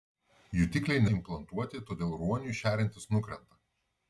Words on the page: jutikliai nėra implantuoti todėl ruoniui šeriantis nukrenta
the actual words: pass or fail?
fail